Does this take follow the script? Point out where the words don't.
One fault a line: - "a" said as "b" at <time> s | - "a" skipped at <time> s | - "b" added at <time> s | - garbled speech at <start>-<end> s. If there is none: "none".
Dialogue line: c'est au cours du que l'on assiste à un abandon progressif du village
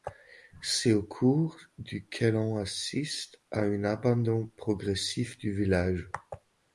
none